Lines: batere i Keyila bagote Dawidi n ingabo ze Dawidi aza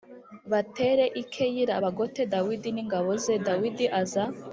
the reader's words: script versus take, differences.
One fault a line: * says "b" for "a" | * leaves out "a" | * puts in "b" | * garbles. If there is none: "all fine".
all fine